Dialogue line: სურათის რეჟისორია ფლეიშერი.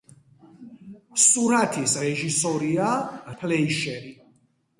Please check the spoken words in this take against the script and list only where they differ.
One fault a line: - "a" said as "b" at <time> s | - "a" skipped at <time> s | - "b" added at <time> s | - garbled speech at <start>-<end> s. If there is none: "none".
none